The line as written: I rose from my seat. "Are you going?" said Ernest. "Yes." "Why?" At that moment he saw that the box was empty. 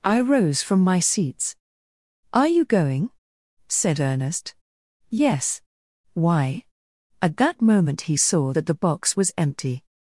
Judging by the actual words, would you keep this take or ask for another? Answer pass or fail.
fail